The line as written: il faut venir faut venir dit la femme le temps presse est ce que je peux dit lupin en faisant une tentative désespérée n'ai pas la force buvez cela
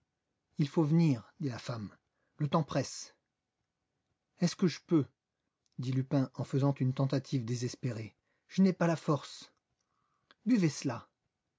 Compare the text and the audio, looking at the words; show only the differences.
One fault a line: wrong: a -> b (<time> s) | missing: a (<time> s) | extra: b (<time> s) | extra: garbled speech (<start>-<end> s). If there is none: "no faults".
missing: faut venir (1.3 s)
extra: je (8.5 s)